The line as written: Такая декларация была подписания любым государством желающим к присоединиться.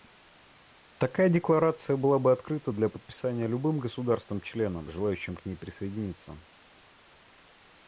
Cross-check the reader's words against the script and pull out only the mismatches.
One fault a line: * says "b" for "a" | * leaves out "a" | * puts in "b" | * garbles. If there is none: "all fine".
* puts in "бы открыта для"
* puts in "членом"
* puts in "ней"